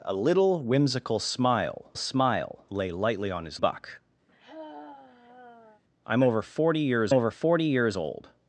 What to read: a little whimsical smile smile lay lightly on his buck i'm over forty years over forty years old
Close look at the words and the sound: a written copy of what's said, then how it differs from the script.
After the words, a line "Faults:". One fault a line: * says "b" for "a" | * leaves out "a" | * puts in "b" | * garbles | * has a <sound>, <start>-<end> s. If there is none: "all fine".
a little whimsical smile smile lay lightly on his buck i'm over forty years over forty years old
Faults:
* has a sigh, 4.3-5.8 s